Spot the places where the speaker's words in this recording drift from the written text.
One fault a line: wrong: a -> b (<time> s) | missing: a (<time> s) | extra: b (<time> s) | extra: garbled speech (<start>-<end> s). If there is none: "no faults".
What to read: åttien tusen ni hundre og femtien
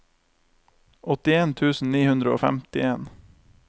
no faults